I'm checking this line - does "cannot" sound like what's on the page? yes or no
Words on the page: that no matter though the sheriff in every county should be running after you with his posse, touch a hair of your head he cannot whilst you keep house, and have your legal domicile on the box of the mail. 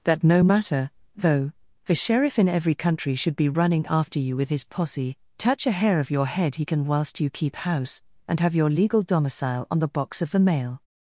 no